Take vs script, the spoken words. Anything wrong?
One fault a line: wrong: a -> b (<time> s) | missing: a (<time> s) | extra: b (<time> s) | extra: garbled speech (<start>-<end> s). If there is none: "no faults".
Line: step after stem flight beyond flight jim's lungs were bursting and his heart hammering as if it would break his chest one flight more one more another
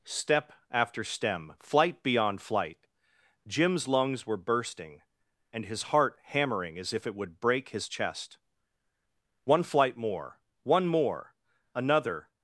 no faults